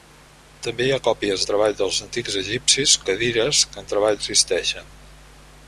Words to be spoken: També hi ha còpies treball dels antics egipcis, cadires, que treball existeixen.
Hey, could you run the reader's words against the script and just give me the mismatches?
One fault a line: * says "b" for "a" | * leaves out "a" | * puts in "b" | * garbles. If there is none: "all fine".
all fine